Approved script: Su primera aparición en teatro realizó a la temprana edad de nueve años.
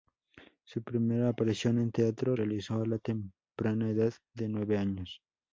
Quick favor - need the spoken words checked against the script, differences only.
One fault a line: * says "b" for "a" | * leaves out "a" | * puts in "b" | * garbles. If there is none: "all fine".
all fine